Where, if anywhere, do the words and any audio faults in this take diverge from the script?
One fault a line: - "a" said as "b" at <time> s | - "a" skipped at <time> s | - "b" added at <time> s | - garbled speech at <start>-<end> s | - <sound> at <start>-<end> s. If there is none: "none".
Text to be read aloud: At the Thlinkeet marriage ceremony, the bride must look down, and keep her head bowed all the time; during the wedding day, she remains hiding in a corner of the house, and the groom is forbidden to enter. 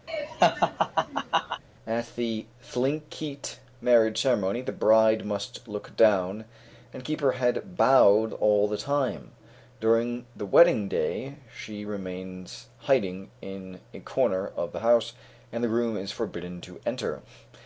- laugh at 0.1-1.6 s